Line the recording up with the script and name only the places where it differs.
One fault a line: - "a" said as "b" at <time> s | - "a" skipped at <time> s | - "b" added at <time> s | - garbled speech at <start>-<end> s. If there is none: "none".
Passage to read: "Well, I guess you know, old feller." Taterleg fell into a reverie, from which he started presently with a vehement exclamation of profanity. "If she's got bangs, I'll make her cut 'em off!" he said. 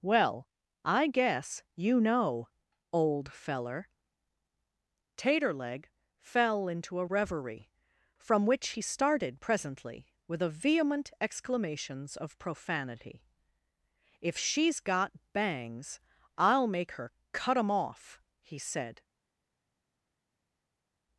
- "exclamation" said as "exclamations" at 11.2 s